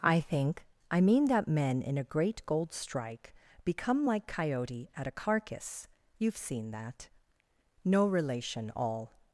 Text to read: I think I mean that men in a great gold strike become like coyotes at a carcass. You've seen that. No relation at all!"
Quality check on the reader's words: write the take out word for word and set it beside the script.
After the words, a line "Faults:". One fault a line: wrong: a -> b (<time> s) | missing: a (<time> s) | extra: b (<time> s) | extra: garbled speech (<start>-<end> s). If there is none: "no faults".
I think I mean that men in a great gold strike become like coyote at a carcass. You've seen that. No relation all!"
Faults:
wrong: coyotes -> coyote (4.3 s)
missing: at (8.7 s)